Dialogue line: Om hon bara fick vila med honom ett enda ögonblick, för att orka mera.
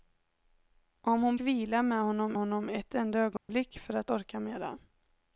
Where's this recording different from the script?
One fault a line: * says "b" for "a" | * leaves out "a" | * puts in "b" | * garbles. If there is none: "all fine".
* leaves out "bara fick"
* puts in "honom"